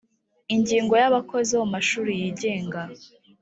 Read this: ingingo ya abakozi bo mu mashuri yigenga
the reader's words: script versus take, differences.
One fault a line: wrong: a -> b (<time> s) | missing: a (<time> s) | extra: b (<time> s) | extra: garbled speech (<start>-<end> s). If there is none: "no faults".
no faults